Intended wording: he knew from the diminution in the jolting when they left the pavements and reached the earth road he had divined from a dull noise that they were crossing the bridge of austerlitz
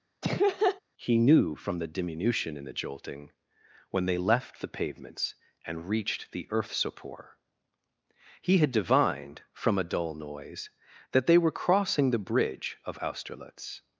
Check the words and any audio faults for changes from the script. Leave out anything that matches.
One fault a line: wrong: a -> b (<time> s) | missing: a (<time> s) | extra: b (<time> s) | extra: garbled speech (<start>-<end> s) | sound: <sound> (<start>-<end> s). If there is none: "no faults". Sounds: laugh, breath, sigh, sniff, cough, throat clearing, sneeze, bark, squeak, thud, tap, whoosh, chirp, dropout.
sound: laugh (0.2-0.8 s)
wrong: road -> sopor (6.7 s)